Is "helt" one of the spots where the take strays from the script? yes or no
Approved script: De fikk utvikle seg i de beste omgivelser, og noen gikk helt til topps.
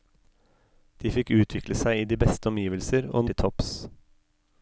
yes